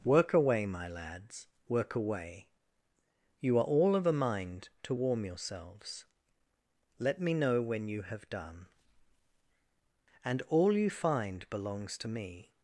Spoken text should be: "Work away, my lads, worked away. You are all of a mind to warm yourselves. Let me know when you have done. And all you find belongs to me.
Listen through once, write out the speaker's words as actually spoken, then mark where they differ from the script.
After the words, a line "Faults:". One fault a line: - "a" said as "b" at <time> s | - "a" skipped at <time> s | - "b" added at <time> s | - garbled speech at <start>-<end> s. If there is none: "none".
"Work away, my lads, work away. You are all of a mind to warm yourselves. Let me know when you have done. And all you find belongs to me.
Faults:
- "worked" said as "work" at 1.7 s